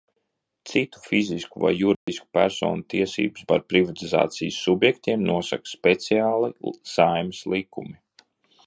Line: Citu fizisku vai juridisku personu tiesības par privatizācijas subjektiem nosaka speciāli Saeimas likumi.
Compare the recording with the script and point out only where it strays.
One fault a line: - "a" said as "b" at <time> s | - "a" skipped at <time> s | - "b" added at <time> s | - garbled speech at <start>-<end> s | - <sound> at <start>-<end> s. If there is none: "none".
- dropout at 1.9-2.1 s